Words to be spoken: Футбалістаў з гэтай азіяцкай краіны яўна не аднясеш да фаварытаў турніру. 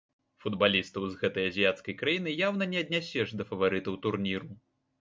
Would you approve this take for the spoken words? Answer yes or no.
yes